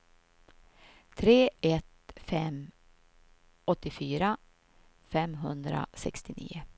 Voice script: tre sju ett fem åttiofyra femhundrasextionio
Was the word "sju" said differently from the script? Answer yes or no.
yes